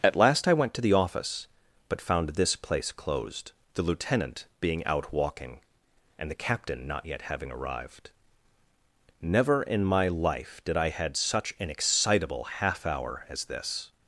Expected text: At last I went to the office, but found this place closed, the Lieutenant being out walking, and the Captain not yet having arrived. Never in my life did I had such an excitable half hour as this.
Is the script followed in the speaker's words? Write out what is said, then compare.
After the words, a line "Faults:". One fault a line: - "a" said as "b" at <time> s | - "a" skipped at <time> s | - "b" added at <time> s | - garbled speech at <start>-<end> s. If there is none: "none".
At last I went to the office, but found this place closed, the Lieutenant being out walking, and the Captain not yet having arrived. Never in my life did I had such an excitable half hour as this.
Faults:
none